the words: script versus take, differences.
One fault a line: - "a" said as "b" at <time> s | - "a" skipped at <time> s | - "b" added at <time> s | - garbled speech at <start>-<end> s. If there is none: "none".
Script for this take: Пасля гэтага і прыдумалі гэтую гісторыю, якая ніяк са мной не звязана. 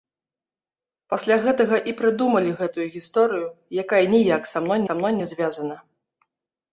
- "са мной" added at 4.9 s